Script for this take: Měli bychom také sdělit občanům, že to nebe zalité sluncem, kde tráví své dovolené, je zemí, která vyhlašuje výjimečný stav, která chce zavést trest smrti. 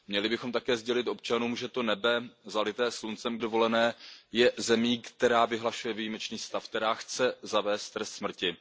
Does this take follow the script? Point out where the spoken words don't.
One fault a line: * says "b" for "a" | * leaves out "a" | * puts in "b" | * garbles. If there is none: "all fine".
* leaves out "kde tráví své"